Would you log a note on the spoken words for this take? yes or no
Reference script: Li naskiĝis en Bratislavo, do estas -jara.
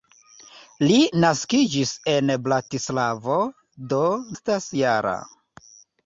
no